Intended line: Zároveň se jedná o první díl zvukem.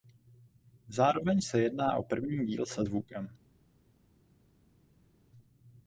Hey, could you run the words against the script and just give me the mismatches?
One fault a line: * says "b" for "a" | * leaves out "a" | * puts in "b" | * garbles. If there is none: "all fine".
* puts in "se"